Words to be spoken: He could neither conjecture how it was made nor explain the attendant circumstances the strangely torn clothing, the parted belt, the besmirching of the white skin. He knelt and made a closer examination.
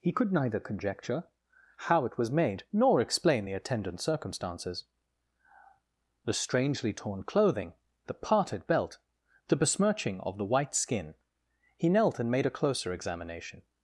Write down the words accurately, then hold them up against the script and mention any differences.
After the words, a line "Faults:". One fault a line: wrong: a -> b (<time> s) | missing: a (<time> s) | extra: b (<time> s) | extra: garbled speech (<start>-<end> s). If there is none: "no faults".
He could neither conjecture how it was made nor explain the attendant circumstances the strangely torn clothing, the parted belt, the besmirching of the white skin. He knelt and made a closer examination.
Faults:
no faults